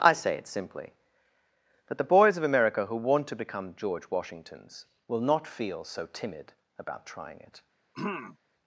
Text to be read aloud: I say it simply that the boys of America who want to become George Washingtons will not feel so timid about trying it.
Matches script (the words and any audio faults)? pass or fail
fail